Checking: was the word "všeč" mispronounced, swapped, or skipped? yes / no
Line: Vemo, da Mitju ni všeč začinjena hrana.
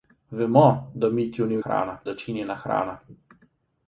yes